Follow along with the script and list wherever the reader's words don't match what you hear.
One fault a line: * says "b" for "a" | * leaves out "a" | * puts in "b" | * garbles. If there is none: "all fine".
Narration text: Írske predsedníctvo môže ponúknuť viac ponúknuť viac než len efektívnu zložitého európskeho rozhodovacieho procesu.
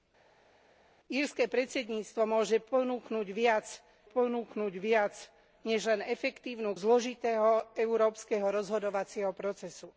all fine